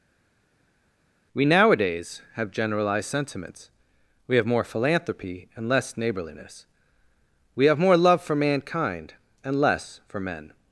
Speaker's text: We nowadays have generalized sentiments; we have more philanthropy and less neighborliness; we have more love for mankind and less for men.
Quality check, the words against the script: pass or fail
pass